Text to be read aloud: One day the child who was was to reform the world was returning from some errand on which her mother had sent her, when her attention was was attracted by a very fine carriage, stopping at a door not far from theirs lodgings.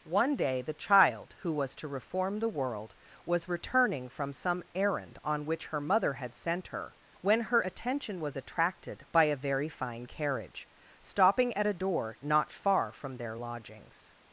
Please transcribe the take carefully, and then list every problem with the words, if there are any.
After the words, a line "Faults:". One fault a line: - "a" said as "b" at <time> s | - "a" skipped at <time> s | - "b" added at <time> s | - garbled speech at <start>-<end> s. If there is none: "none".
One day the child who was to reform the world was returning from some errand on which her mother had sent her, when her attention was attracted by a very fine carriage, stopping at a door not far from their lodgings.
Faults:
- "was" skipped at 1.8 s
- "was" skipped at 8.4 s
- "theirs" said as "their" at 13.2 s